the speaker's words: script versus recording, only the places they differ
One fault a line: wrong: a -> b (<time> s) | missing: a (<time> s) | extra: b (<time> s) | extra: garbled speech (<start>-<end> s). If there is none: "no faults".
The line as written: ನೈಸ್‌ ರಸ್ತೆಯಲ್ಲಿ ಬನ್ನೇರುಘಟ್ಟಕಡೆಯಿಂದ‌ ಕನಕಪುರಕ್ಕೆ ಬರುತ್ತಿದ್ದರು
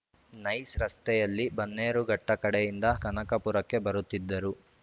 no faults